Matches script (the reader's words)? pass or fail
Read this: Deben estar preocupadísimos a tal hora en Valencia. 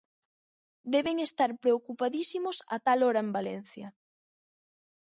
pass